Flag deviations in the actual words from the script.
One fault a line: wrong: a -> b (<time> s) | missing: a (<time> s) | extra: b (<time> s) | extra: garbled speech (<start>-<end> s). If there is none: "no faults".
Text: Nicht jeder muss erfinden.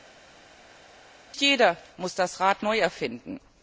extra: das Rad neu (2.1 s)